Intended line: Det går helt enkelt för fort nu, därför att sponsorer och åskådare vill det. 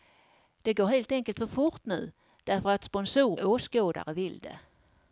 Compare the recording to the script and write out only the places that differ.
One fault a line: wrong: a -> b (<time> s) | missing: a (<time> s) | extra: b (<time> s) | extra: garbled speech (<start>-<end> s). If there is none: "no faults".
missing: och (3.4 s)